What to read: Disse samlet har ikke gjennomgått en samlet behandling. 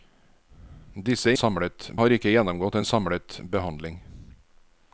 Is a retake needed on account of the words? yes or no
no